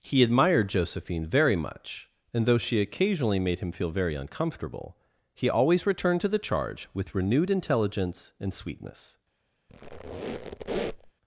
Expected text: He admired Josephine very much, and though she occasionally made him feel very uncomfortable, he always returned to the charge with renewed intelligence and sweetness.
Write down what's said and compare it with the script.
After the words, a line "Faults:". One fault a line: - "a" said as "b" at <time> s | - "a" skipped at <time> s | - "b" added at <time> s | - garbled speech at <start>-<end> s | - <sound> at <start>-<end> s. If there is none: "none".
He admired Josephine very much, and though she occasionally made him feel very uncomfortable, he always returned to the charge with renewed intelligence and sweetness.
Faults:
- squeak at 9.7-11.1 s